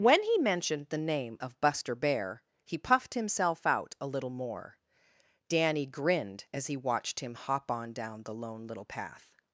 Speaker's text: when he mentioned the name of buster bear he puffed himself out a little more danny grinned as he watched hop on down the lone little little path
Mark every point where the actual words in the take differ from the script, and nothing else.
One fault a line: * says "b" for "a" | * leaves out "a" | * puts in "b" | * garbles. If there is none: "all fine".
* puts in "him"
* leaves out "little"